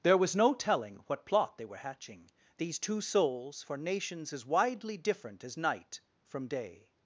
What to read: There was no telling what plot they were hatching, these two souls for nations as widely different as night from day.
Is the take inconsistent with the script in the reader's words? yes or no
no